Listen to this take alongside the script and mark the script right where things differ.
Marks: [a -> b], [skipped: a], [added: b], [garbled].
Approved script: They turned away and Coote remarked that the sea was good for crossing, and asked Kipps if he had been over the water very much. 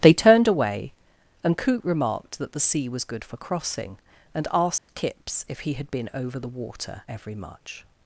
They turned away and Coote remarked that the sea was good for crossing, and asked Kipps if he had been over the water [very -> every] much.